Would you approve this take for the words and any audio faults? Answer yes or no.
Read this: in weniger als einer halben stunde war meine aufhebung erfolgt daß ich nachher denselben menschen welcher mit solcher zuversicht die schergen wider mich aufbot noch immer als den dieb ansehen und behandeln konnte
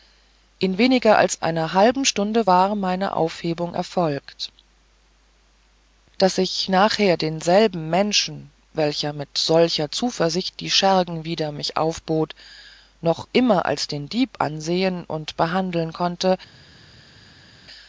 yes